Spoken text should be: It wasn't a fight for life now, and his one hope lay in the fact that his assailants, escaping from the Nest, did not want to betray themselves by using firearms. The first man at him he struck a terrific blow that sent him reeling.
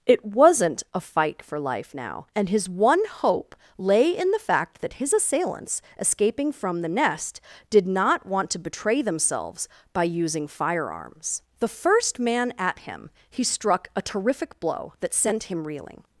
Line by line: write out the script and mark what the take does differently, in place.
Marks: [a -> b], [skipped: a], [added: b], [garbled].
It wasn't a fight for life now, and his one hope lay in the fact that his assailants, escaping from the Nest, did not want to betray themselves by using firearms. The first man at him he struck a terrific blow that sent him reeling.